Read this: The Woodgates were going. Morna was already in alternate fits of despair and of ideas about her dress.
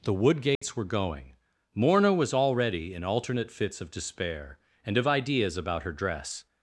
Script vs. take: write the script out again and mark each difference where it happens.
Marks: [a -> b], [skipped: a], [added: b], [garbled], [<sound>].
The Woodgates [dropout] were going. Morna was already in alternate fits of despair and of ideas about her dress.